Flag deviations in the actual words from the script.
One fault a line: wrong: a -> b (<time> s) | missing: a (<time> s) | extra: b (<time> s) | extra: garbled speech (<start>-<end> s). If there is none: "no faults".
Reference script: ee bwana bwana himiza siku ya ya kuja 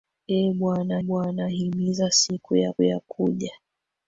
no faults